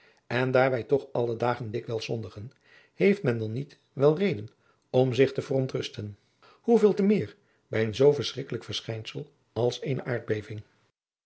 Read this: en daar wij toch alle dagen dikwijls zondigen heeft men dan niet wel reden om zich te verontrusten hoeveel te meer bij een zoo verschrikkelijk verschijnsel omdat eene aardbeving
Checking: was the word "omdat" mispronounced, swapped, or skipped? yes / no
yes